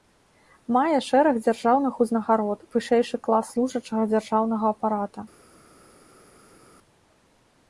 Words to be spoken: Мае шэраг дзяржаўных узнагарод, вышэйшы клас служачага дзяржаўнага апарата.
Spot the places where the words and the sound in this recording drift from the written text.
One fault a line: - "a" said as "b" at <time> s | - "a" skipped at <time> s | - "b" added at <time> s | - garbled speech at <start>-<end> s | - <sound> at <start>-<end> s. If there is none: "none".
none